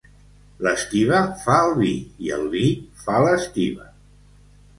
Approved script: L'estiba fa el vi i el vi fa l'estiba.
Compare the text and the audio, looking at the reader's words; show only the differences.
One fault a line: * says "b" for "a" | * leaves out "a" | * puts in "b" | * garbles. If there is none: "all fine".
all fine